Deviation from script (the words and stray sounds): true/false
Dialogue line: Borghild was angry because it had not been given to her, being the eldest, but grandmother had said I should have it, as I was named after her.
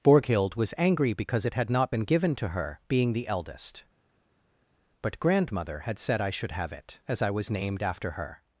false